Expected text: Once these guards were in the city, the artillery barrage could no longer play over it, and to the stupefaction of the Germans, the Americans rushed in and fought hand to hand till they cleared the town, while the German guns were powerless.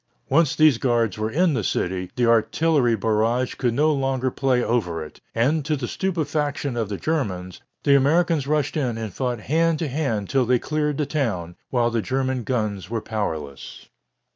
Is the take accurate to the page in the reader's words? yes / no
yes